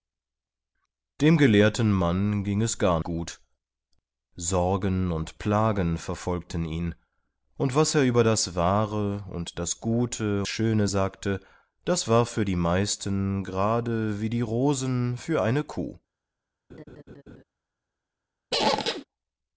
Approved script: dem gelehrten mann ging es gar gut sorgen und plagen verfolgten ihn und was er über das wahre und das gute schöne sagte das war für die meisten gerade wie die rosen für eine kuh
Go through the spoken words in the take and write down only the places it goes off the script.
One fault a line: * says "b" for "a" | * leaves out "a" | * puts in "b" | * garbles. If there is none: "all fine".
all fine